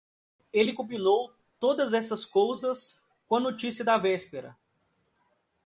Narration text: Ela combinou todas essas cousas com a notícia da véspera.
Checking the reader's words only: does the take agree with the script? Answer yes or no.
no